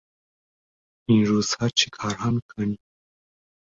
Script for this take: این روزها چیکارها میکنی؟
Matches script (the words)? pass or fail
pass